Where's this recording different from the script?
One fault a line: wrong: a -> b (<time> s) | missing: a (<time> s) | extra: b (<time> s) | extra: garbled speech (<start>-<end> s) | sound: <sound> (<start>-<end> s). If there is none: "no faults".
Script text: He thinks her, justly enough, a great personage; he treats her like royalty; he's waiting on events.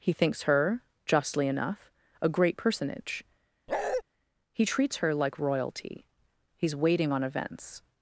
sound: bark (3.7-4.0 s)